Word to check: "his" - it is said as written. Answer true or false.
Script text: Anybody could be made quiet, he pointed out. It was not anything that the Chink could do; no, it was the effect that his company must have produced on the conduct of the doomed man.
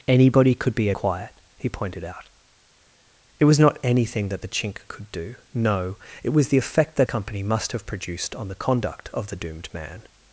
false